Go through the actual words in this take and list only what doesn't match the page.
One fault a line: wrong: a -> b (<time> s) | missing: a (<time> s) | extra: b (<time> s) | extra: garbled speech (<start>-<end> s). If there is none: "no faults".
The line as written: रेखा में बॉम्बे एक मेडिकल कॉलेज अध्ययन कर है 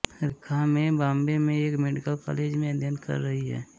extra: में (1.4 s)
extra: में (2.5 s)
extra: रही (3.2 s)